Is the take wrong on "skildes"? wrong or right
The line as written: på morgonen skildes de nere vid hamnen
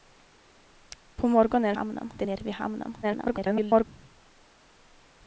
wrong